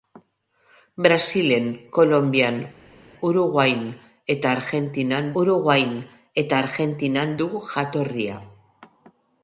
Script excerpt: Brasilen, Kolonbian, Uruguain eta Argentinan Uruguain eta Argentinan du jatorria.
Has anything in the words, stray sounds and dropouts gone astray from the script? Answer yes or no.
no